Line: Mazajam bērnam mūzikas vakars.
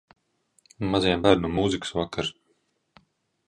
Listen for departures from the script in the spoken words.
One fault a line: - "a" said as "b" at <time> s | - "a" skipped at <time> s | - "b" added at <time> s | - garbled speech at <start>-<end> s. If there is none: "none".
none